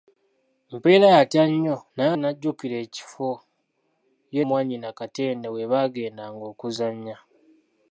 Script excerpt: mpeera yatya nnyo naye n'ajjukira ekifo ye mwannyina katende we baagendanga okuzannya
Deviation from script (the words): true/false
false